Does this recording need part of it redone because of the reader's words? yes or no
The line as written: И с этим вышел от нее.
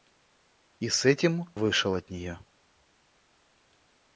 no